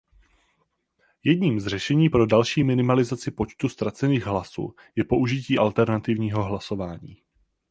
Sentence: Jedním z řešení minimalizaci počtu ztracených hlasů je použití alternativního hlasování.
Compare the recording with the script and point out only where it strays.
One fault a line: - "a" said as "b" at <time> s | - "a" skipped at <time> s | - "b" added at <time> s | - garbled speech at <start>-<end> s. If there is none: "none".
- "pro další" added at 2.1 s